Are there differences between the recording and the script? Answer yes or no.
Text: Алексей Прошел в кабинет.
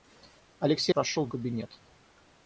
no